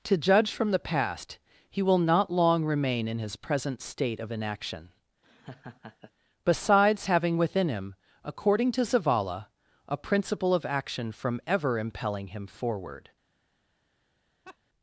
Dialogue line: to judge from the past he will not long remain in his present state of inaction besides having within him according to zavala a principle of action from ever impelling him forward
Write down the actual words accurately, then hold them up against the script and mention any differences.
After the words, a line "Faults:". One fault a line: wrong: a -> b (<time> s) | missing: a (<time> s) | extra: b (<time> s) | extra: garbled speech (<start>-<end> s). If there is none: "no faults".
to judge from the past he will not long remain in his present state of inaction besides having within him according to zavala a principle of action from ever impelling him forward
Faults:
no faults